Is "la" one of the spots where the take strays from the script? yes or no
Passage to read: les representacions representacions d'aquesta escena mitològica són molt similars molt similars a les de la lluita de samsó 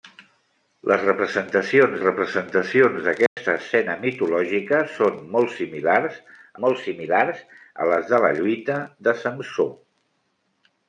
no